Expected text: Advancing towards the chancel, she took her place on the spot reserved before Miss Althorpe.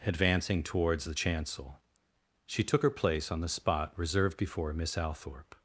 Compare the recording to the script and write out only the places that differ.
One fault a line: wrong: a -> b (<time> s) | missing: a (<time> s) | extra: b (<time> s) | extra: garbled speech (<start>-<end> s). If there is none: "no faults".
no faults